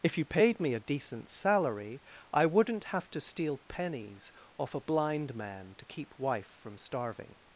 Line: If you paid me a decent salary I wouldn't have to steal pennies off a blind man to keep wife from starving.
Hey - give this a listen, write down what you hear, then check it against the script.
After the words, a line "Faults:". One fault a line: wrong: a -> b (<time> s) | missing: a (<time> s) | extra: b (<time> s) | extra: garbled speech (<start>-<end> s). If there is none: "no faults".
If you paid me a decent salary I wouldn't have to steal pennies off a blind man to keep wife from starving.
Faults:
no faults